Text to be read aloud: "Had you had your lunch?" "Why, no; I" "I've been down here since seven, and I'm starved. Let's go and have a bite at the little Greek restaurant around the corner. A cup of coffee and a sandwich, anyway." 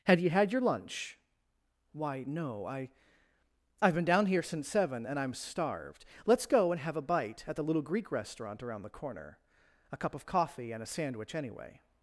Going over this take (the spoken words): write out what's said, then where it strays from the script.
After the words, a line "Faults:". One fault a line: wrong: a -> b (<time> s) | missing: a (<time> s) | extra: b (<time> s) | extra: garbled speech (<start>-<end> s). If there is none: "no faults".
"Had you had your lunch?" "Why, no; I" "I've been down here since seven, and I'm starved. Let's go and have a bite at the little Greek restaurant around the corner. A cup of coffee and a sandwich, anyway."
Faults:
no faults